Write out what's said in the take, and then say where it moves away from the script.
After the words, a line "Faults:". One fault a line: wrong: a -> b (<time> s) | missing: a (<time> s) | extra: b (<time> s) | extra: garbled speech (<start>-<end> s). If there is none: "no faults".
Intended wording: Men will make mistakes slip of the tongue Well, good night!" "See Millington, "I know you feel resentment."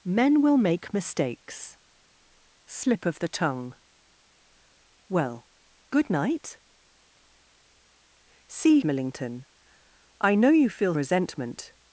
Men will make mistakes slip of the tongue Well, good night!" "See Millington, "I know you feel resentment."
Faults:
no faults